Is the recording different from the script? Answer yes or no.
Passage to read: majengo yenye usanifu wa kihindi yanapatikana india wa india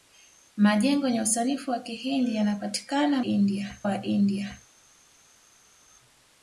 no